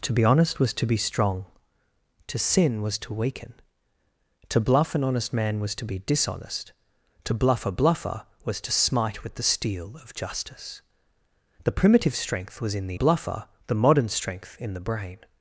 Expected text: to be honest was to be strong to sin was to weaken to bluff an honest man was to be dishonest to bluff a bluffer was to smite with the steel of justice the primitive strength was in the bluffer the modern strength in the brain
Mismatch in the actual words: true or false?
false